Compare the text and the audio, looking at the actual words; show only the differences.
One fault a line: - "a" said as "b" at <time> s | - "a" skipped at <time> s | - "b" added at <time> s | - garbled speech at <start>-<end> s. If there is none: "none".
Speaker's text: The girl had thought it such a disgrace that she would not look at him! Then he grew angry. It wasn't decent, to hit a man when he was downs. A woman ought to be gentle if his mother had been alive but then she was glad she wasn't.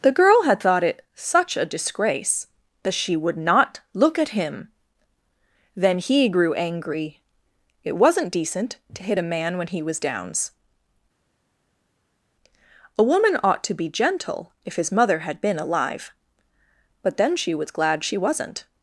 none